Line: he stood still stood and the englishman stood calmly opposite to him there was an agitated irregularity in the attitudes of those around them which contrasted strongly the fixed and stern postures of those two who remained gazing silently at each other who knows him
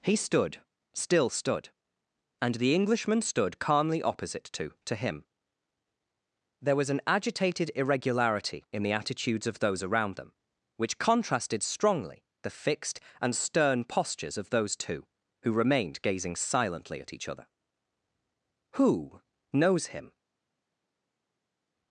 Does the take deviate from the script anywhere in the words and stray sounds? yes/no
yes